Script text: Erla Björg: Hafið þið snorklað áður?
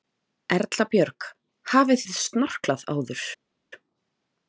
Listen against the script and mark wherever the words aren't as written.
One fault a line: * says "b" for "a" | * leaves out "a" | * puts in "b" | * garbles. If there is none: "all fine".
all fine